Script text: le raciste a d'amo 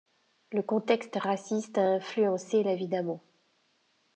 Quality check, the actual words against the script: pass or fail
fail